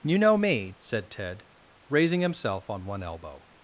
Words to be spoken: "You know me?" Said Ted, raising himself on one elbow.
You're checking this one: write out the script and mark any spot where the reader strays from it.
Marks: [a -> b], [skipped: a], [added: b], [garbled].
"You know me?" Said Ted, raising himself on one elbow.